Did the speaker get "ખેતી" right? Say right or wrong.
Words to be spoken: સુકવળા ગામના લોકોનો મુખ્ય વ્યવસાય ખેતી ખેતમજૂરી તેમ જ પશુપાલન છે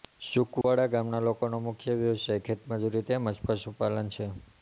wrong